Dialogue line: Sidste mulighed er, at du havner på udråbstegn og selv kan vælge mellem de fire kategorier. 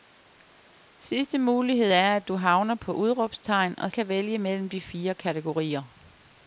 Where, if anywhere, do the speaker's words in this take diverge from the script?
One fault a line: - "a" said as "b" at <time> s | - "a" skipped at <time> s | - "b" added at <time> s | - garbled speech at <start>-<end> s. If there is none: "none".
- "selv" skipped at 3.9 s